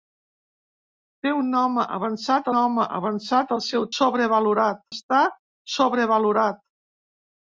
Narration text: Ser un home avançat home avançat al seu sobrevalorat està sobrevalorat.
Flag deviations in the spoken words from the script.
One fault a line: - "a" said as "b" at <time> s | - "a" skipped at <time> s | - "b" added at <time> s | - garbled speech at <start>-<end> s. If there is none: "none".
none